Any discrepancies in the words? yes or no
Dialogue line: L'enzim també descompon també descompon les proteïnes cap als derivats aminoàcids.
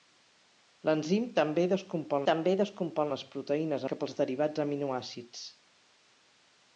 no